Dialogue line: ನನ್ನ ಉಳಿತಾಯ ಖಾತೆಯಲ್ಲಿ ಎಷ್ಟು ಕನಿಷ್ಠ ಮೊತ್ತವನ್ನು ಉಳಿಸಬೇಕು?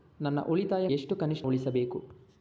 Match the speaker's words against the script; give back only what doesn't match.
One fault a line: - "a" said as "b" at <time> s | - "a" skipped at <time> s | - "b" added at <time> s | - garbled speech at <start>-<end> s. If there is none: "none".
- "ಖಾತೆಯಲ್ಲಿ" skipped at 0.9 s
- "ಮೊತ್ತವನ್ನು" skipped at 1.5 s